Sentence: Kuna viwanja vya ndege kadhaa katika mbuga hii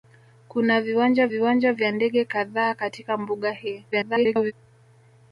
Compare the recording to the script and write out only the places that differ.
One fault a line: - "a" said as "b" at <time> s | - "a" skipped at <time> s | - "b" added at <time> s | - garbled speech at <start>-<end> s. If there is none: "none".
- "viwanja" added at 1.3 s
- garbled speech at 3.9-4.5 s